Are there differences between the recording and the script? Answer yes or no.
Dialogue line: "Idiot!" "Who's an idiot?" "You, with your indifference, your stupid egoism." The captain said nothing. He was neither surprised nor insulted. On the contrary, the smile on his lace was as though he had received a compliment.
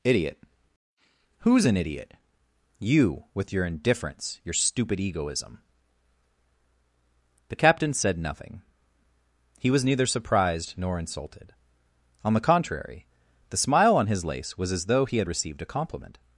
no